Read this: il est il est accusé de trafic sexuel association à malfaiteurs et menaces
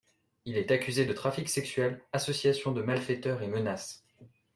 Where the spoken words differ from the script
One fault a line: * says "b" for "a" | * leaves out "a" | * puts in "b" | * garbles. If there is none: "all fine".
* leaves out "il est"
* says "de" for "à"